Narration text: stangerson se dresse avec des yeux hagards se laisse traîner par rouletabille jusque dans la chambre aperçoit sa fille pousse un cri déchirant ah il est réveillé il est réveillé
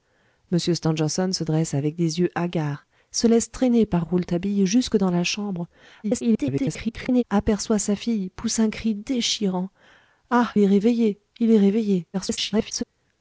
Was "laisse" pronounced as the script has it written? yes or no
yes